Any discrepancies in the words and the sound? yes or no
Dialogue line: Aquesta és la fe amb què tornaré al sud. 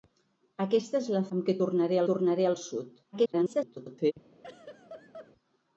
yes